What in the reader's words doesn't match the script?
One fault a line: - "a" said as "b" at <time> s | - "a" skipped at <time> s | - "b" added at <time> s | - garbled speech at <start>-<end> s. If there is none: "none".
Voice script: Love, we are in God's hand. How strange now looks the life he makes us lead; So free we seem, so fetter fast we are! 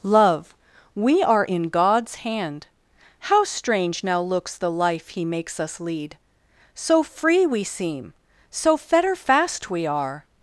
none